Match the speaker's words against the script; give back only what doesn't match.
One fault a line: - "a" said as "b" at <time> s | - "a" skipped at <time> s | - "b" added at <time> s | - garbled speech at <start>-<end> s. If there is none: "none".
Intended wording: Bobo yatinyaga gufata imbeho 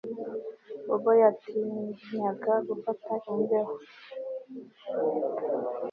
none